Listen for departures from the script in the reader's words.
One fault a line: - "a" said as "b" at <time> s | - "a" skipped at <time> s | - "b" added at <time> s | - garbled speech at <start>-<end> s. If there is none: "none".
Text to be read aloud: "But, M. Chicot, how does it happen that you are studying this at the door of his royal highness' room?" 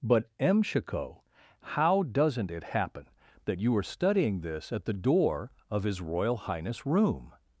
- "does" said as "doesn't" at 2.0 s